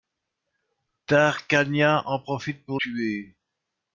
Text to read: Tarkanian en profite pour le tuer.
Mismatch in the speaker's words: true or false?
true